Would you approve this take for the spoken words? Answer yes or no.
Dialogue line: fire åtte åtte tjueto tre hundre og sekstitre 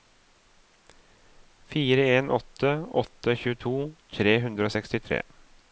no